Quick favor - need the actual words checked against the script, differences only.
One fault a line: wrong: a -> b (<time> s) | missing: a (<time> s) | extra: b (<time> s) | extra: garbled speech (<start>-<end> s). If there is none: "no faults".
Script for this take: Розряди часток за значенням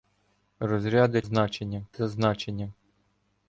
wrong: часток -> значенням (1.2 s)